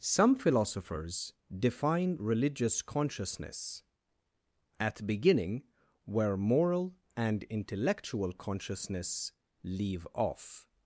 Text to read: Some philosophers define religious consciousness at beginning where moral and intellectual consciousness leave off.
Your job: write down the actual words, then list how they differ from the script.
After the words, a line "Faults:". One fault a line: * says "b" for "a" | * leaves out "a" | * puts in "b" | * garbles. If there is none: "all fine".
Some philosophers define religious consciousness at beginning where moral and intellectual consciousness leave off.
Faults:
all fine